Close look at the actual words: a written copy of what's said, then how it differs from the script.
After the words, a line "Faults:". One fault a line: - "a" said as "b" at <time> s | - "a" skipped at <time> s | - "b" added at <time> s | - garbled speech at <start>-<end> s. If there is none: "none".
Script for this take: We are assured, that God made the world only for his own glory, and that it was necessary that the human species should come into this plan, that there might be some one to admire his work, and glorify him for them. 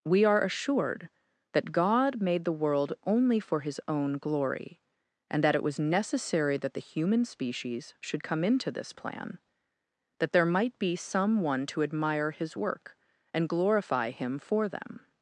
We are assured, that God made the world only for his own glory, and that it was necessary that the human species should come into this plan, that there might be some one to admire his work, and glorify him for them.
Faults:
none